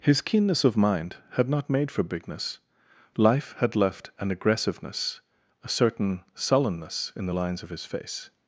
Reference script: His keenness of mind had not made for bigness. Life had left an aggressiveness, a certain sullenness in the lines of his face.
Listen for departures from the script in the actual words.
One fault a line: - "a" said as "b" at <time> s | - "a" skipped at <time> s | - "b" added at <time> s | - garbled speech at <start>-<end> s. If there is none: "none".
none